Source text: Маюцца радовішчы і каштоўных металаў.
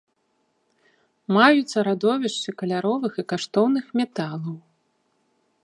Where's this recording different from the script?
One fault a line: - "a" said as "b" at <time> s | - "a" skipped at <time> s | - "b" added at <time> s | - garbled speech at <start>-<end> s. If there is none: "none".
- "каляровых" added at 2.6 s